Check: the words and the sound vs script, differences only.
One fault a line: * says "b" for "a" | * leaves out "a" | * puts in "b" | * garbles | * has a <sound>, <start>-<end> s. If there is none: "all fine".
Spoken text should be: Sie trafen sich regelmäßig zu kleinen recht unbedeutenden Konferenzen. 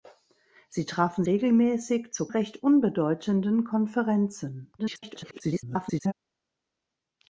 * leaves out "sich"
* leaves out "kleinen"
* garbles